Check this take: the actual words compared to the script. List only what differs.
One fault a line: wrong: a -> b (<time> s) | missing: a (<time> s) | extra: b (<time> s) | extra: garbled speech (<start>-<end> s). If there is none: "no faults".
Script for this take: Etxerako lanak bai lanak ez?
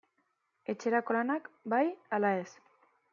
wrong: lanak -> ala (2.2 s)